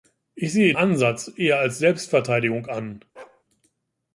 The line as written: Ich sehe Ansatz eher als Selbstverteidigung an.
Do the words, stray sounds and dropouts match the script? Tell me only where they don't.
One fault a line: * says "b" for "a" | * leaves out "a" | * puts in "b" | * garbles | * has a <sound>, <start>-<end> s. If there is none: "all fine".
* has a bark, 3.1-3.4 s